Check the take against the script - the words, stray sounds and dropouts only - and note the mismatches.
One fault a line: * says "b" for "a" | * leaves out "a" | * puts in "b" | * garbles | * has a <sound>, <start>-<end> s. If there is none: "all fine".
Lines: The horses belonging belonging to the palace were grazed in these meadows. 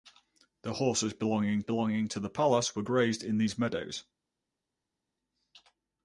all fine